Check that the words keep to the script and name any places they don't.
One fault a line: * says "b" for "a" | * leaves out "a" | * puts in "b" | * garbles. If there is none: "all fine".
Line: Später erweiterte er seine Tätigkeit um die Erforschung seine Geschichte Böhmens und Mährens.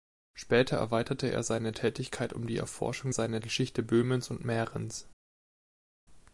all fine